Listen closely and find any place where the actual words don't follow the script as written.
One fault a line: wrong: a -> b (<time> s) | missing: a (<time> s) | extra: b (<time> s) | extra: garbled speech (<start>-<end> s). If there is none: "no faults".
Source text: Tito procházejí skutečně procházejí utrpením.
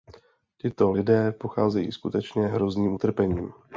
extra: lidé (0.9 s)
wrong: procházejí -> hrozným (2.5 s)